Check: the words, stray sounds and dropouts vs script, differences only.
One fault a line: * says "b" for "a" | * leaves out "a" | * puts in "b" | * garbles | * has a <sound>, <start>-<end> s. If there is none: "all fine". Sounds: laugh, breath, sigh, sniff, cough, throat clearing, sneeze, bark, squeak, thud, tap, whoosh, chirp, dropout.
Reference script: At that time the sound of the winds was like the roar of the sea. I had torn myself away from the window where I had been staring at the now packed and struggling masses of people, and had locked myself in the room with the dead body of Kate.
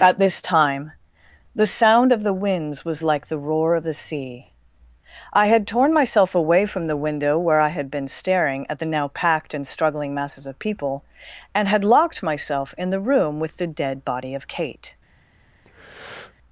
* says "this" for "that"
* has a breath, 15.6-16.3 s